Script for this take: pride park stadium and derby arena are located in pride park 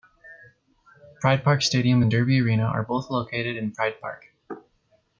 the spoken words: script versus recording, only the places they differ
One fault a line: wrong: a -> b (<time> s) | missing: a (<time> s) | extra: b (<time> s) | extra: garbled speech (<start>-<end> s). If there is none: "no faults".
extra: both (2.8 s)